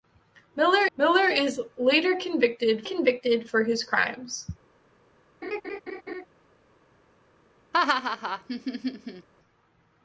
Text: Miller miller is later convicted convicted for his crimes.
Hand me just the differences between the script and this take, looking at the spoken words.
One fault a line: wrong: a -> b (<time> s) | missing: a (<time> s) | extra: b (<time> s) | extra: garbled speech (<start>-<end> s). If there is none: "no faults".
no faults